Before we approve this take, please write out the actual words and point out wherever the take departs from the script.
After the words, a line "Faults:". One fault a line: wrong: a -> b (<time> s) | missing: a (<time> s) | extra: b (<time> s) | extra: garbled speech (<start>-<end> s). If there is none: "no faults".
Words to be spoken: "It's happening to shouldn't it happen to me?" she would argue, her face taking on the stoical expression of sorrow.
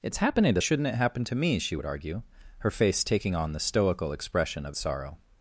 "It's happening to shouldn't it happen to me?" she would argue, her face taking on the stoical expression of sorrow.
Faults:
no faults